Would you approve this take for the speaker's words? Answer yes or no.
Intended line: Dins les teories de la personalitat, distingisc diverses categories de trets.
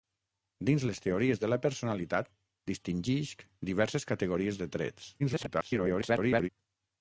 no